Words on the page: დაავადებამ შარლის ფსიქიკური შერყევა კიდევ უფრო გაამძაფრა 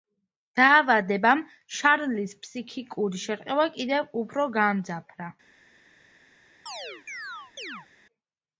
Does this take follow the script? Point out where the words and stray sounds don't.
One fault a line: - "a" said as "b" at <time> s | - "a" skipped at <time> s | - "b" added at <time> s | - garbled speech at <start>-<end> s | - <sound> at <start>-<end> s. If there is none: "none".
- chirp at 6.7-7.9 s